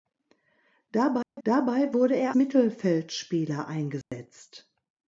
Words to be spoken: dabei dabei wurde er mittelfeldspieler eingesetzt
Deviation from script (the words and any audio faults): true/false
true